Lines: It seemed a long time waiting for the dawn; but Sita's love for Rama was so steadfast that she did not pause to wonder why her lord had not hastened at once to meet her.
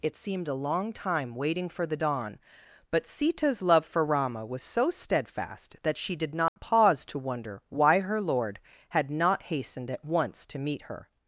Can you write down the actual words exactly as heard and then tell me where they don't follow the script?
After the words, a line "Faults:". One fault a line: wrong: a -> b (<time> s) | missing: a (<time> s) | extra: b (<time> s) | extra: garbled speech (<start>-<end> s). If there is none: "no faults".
It seemed a long time waiting for the dawn; but Sita's love for Rama was so steadfast that she did not pause to wonder why her lord had not hastened at once to meet her.
Faults:
no faults